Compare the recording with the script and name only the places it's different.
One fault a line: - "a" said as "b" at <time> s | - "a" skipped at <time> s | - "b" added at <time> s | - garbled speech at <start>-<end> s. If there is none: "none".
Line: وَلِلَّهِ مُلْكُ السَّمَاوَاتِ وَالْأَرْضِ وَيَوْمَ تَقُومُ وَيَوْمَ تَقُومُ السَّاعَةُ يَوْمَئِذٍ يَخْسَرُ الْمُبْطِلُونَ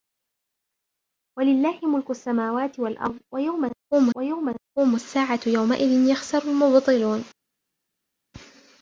none